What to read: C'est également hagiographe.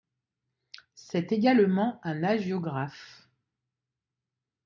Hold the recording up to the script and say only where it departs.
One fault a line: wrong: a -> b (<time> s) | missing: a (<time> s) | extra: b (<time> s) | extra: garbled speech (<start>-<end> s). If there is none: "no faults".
extra: un (2.0 s)